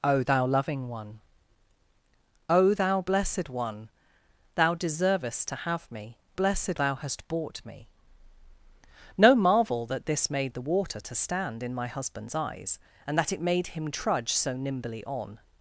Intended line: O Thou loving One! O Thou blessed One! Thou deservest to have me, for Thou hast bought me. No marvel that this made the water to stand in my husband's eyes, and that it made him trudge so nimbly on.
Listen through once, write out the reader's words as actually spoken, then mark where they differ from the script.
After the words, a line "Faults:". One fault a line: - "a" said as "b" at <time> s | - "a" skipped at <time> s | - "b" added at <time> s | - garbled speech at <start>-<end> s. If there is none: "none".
O Thou loving One! O Thou blessed One! Thou deservest to have me, blessed Thou hast bought me. No marvel that this made the water to stand in my husband's eyes, and that it made him trudge so nimbly on.
Faults:
- "for" said as "blessed" at 6.3 s